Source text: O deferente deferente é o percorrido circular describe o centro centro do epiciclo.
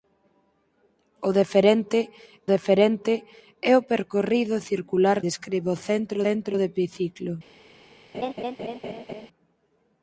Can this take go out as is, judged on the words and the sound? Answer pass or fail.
fail